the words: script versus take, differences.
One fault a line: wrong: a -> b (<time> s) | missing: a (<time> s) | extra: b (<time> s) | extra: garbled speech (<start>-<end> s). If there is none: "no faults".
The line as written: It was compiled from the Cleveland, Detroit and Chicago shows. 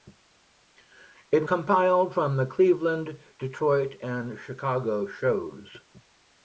missing: was (1.4 s)